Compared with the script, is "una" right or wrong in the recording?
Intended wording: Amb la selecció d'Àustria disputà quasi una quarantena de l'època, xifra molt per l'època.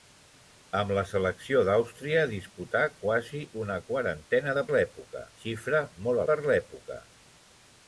right